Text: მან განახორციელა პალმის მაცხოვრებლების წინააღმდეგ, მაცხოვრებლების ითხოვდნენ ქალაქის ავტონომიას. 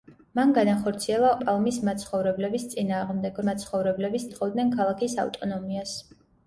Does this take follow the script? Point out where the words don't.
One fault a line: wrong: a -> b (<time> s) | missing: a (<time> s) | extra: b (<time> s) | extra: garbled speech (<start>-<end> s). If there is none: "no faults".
no faults